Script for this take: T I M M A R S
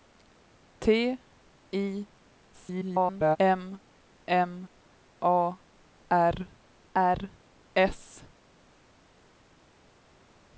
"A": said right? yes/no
yes